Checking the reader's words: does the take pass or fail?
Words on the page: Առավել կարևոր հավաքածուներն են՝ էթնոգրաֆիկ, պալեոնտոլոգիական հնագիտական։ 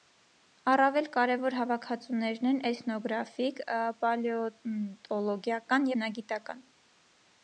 pass